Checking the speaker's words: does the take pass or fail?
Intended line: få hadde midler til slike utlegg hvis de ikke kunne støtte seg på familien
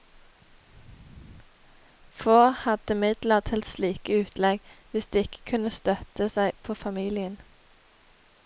pass